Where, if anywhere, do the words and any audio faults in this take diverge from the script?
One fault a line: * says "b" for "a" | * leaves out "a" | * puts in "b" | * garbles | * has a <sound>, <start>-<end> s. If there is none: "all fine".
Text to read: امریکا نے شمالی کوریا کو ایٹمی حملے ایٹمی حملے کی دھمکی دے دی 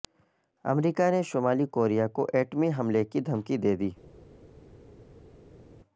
* leaves out "ایٹمی حملے"